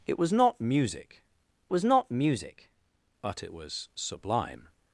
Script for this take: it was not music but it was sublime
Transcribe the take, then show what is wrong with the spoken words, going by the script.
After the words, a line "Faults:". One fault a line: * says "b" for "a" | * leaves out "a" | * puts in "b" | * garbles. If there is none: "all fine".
it was not music was not music but it was sublime
Faults:
* puts in "was not music"